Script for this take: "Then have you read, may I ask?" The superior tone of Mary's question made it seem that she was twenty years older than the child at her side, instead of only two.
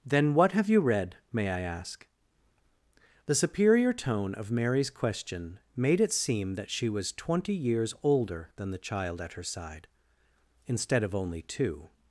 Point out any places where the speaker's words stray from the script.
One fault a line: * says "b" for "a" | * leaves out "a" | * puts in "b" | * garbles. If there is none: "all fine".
* puts in "what"